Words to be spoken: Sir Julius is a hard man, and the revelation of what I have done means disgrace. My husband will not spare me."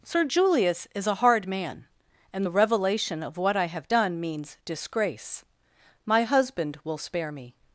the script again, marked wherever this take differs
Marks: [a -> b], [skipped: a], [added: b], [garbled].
Sir Julius is a hard man, and the revelation of what I have done means disgrace. My husband will [skipped: not] spare me."